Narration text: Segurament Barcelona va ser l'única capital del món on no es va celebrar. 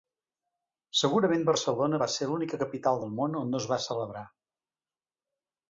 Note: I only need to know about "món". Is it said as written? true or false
true